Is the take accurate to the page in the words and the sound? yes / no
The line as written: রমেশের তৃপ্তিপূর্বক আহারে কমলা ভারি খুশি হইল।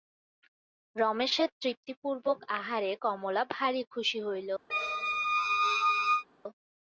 no